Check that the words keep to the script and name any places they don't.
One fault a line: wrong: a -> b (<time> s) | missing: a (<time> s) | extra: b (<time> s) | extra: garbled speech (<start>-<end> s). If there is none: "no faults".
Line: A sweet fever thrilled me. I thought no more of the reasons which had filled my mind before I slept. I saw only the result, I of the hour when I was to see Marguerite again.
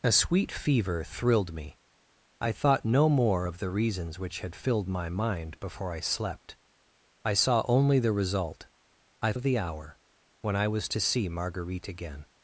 no faults